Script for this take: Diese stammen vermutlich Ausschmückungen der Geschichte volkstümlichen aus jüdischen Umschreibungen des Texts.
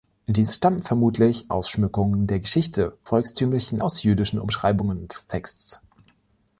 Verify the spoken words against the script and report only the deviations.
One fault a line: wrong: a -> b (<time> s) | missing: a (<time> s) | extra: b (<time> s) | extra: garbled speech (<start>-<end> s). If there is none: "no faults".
no faults